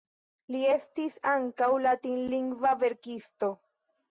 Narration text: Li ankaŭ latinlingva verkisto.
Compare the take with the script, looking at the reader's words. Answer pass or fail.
fail